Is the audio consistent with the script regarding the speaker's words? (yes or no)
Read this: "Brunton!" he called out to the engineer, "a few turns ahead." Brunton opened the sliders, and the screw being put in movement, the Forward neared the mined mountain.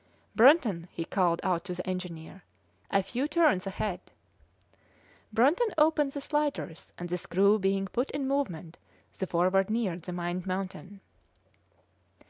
yes